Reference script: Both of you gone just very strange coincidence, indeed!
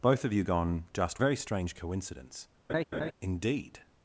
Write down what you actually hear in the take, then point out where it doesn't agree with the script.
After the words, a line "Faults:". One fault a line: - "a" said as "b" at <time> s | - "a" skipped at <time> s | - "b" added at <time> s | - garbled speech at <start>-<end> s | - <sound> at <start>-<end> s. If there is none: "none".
Both of you gone just very strange coincidence, indeed!
Faults:
- laugh at 2.7-3.1 s